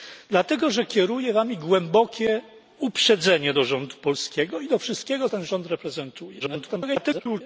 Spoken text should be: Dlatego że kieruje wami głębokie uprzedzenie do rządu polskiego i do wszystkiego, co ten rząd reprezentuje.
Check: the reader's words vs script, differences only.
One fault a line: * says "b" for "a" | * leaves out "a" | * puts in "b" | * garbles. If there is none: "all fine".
* leaves out "co"
* garbles